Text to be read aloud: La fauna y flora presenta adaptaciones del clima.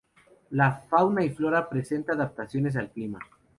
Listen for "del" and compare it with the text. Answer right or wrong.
wrong